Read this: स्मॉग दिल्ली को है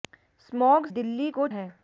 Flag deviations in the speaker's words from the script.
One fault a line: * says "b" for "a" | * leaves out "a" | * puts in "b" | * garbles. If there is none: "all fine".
all fine